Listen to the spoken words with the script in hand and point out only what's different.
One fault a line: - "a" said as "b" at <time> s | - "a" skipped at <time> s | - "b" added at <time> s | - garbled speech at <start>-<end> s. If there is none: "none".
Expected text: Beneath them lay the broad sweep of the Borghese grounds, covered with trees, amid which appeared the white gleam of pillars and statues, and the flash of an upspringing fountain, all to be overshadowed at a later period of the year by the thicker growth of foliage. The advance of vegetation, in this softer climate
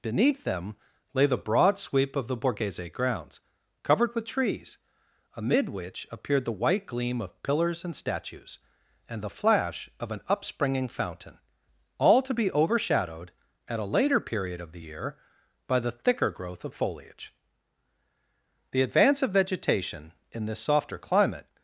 none